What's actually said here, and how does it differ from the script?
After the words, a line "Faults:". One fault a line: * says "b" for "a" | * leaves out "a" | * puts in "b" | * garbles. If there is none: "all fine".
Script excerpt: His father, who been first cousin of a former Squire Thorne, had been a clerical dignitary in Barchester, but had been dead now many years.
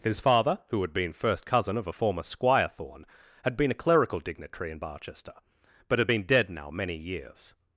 His father, who had been first cousin of a former Squire Thorne, had been a clerical dignitary in Barchester, but had been dead now many years.
Faults:
* puts in "had"